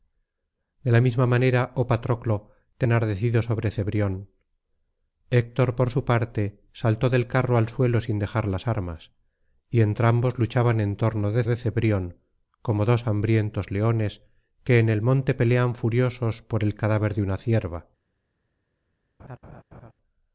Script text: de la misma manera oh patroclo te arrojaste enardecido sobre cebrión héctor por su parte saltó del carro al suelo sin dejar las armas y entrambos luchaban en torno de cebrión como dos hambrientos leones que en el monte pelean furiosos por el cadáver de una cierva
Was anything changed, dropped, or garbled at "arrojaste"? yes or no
yes